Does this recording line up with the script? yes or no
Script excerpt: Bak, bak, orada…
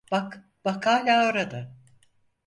no